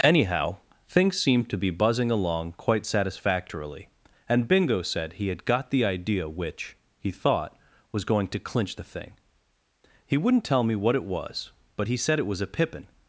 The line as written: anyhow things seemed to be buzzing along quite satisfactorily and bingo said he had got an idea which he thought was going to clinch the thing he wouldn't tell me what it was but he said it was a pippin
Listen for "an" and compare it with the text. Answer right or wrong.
wrong